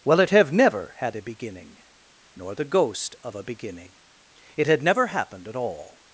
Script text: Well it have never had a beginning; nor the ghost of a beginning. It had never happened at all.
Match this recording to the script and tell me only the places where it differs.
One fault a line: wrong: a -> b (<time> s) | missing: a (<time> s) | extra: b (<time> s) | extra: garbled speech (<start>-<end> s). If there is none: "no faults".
no faults